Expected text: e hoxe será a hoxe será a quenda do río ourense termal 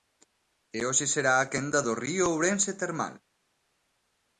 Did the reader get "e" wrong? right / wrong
right